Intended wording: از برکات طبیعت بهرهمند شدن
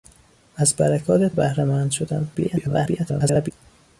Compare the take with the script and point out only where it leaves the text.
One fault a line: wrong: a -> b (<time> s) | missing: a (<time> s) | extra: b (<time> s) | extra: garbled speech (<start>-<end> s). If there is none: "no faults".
missing: طبیعت (1.3 s)
extra: garbled speech (2.3-3.5 s)